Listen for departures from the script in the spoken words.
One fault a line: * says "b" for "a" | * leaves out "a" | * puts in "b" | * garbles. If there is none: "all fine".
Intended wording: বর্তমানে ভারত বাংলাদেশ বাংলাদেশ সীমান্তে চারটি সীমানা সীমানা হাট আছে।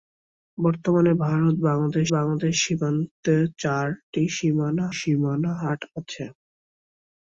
all fine